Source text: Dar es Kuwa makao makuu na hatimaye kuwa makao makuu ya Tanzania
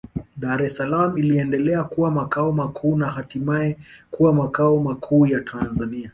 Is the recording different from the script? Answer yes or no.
yes